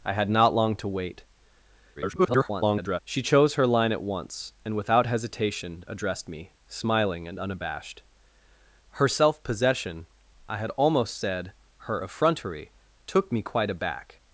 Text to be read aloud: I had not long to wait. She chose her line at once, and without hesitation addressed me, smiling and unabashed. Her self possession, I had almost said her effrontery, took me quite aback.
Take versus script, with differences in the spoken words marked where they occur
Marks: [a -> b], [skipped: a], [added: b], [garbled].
I had not long to wait. [garbled] She chose her line at once, and without hesitation addressed me, smiling and unabashed. Her self possession, I had almost said her effrontery, took me quite aback.